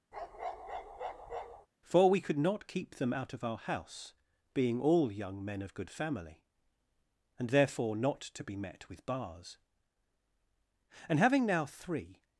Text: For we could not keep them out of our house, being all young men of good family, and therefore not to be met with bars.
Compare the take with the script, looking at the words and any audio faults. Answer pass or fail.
fail